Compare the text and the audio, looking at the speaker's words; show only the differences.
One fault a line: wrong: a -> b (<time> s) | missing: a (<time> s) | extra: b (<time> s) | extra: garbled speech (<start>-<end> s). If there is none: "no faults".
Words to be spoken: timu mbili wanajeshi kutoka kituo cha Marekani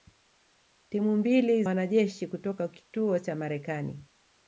no faults